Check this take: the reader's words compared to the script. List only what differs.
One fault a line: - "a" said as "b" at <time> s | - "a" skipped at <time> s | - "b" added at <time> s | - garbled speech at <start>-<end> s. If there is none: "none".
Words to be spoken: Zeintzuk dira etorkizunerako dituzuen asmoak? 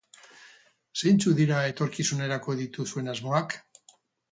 none